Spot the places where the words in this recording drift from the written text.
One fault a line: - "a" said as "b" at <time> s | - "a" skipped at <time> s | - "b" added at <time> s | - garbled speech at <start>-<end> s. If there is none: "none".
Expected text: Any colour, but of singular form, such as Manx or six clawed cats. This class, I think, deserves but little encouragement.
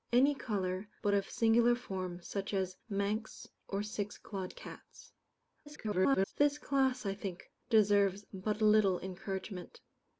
- garbled speech at 5.7-6.3 s